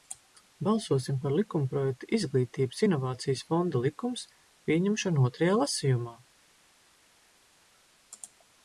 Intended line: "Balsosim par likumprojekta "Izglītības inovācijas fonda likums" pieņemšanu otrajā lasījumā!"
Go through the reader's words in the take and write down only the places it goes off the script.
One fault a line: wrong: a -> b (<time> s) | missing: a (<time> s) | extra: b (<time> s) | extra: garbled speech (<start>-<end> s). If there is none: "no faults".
no faults